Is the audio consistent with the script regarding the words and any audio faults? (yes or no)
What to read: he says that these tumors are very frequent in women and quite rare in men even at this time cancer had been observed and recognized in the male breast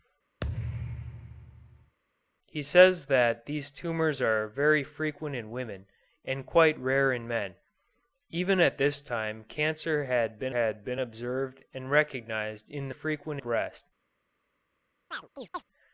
no